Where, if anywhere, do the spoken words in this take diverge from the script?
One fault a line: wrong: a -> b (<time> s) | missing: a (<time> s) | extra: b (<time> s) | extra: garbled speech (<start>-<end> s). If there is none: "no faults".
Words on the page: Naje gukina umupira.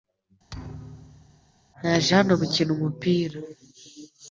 extra: hano (2.2 s)